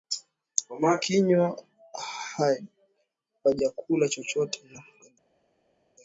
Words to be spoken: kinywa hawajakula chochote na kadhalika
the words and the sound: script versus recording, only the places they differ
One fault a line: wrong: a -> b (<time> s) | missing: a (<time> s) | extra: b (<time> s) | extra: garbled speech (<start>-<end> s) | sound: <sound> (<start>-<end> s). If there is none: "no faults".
no faults